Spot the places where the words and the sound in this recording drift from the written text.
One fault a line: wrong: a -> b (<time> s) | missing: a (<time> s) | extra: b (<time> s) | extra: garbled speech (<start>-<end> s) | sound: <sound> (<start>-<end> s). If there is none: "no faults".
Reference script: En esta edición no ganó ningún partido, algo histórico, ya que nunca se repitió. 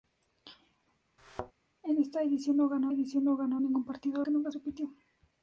sound: thud (1.2-1.5 s)
wrong: ningún partido algo histórico ya -> edición no ganó ningún partido (2.9 s)
missing: se (4.5 s)